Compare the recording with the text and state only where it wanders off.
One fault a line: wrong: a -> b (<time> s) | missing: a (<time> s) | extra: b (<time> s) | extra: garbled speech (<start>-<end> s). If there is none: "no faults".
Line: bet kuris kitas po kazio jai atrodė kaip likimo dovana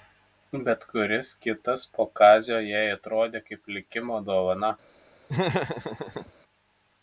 no faults